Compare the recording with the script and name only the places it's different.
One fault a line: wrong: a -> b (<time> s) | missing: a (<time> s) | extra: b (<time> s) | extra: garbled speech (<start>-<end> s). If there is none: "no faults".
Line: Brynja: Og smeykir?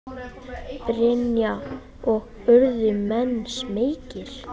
extra: urðu menn (2.5 s)